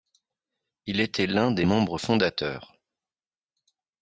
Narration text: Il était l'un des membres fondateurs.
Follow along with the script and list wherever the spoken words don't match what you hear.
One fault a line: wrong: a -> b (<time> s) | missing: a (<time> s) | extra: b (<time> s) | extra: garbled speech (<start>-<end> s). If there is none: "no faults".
no faults